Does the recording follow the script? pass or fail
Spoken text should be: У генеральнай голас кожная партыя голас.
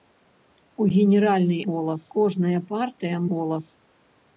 pass